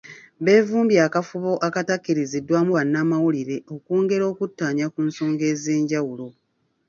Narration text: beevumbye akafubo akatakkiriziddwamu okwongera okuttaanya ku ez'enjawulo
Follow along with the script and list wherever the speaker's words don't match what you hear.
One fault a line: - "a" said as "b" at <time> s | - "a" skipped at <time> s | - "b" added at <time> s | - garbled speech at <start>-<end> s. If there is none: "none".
- "bannamawulire" added at 2.8 s
- "nsonga" added at 5.1 s